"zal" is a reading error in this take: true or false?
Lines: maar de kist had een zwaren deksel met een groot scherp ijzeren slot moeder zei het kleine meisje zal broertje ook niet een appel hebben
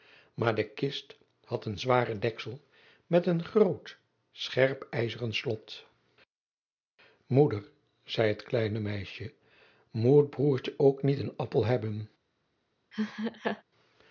true